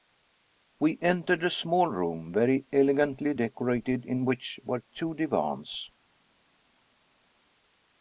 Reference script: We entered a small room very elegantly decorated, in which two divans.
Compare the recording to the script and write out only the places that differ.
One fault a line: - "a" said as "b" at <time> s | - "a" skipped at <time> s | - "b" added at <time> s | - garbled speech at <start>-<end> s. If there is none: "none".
- "were" added at 4.7 s